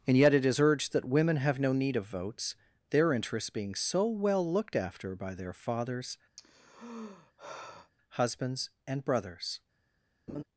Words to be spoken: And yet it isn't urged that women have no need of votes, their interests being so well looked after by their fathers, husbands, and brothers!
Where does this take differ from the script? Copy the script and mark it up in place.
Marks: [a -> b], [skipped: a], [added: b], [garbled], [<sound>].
And yet it [isn't -> is] urged that women have no need of votes, their interests being so well looked after by their fathers, [sigh] husbands, and brothers! [laugh]